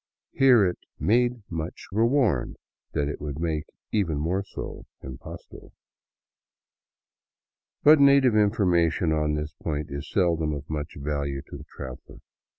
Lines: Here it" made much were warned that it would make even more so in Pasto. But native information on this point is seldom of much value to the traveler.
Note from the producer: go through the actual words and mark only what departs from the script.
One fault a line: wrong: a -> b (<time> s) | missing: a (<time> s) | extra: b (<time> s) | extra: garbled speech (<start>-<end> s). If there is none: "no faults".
no faults